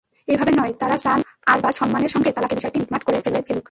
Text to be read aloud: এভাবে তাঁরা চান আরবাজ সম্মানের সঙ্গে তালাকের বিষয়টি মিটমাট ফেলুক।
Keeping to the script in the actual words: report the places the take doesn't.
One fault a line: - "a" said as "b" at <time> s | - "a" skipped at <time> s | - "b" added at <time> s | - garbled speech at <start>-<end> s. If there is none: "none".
- "নয়" added at 0.5 s
- "করে" added at 3.0 s